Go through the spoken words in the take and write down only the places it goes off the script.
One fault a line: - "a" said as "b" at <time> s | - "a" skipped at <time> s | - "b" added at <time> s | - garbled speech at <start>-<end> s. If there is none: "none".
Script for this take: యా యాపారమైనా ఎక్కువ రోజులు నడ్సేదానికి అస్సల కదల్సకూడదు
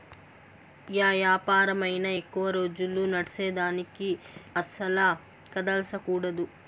none